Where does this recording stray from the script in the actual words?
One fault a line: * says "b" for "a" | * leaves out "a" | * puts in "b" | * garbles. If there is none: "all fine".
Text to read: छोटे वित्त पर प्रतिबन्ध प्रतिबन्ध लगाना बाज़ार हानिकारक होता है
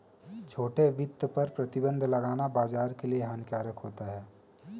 * leaves out "प्रतिबन्ध"
* puts in "के लिए"